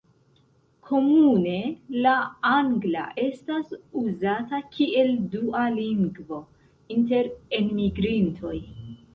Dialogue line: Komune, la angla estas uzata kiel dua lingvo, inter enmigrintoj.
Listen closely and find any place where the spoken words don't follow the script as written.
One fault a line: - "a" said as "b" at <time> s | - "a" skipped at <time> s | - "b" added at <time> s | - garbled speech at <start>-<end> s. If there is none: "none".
none